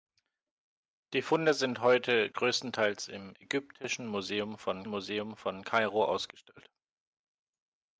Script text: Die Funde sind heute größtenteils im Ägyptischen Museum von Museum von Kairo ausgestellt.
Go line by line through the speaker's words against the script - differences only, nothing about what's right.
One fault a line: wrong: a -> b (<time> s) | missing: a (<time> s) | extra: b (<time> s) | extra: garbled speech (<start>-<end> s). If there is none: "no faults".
no faults